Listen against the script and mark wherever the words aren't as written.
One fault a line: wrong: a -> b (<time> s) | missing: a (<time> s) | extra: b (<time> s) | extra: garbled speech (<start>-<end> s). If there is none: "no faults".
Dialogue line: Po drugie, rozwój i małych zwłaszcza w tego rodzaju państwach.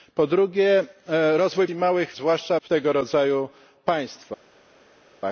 no faults